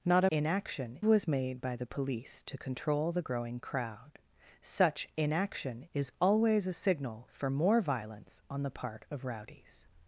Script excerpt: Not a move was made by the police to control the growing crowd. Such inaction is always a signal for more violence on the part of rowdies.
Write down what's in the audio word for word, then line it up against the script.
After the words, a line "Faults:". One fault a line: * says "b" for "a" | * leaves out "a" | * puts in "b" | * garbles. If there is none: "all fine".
Not a inaction was made by the police to control the growing crowd. Such inaction is always a signal for more violence on the part of rowdies.
Faults:
* says "inaction" for "move"